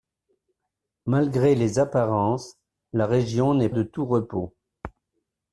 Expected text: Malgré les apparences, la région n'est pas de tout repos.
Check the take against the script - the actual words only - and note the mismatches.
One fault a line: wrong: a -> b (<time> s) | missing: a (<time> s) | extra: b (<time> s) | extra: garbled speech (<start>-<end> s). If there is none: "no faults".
missing: pas (3.7 s)